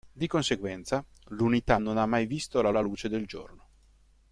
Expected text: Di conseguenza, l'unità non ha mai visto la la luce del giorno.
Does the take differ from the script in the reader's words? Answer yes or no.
no